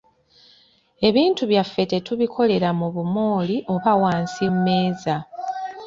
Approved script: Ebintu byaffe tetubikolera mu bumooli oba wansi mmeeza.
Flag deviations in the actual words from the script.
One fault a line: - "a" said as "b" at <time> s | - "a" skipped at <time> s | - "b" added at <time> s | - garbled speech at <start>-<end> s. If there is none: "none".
none